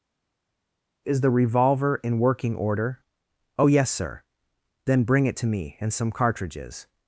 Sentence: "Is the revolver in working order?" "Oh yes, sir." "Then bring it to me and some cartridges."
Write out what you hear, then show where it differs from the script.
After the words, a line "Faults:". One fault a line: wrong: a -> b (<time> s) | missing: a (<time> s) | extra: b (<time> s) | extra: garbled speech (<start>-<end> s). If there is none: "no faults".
"Is the revolver in working order?" "Oh yes, sir." "Then bring it to me and some cartridges."
Faults:
no faults